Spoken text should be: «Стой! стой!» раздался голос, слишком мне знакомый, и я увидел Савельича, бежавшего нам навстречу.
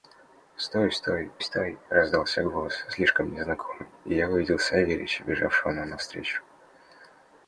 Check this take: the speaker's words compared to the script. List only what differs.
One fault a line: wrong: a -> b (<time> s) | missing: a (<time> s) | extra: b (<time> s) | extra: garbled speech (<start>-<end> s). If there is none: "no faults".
extra: стой (1.4 s)